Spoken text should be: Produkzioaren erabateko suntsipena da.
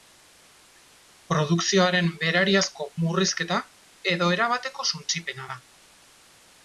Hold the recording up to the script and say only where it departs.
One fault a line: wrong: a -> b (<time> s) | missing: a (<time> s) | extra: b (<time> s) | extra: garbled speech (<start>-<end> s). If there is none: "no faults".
extra: berariazko murrizketa edo (2.2 s)